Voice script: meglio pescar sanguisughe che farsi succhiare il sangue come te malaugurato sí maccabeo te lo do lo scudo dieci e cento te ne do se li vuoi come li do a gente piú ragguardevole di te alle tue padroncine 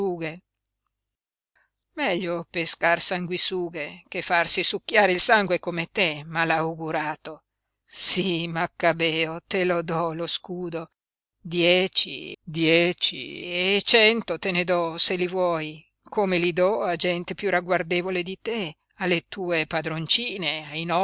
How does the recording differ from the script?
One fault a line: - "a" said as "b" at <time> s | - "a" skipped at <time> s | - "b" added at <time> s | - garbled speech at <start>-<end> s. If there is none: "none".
- "dieci" added at 12.4 s